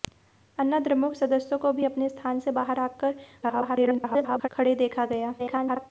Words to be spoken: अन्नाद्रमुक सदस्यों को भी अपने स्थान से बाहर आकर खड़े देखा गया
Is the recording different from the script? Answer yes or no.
yes